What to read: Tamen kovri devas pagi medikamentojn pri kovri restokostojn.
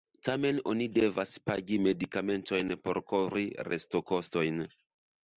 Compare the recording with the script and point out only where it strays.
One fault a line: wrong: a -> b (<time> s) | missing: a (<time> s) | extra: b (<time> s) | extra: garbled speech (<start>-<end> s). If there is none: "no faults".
wrong: kovri -> oni (0.7 s)
wrong: pri -> por (2.9 s)